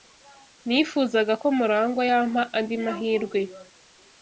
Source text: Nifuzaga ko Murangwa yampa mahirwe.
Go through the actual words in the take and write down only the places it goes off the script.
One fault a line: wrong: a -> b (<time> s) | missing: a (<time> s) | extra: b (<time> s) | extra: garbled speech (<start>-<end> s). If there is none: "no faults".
extra: andi (2.6 s)